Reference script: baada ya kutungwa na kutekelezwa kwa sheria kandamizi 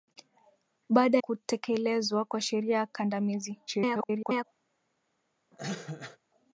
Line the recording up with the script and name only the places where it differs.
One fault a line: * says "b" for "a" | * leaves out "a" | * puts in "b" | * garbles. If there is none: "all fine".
* leaves out "ya kutungwa na"
* garbles